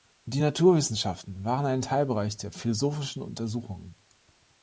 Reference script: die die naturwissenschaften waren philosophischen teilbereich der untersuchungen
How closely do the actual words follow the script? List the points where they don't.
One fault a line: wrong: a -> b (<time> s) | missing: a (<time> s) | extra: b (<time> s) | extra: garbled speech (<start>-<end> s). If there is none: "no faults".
missing: die (0.4 s)
wrong: philosophischen -> ein (1.7 s)
extra: philosophischen (2.5 s)